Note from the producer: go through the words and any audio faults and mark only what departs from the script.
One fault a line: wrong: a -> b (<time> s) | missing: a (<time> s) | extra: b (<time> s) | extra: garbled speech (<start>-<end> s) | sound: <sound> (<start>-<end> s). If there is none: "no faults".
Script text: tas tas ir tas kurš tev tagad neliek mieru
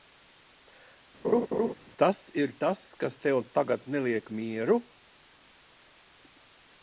sound: laugh (1.2-1.7 s)
missing: tas (2.2 s)
wrong: kurš -> kas (3.0 s)